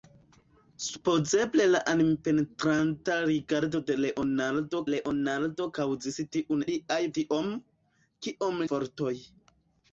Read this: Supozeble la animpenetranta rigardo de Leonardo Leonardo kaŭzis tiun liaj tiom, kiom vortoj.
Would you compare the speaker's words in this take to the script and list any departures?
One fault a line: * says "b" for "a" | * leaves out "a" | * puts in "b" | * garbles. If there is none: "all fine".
all fine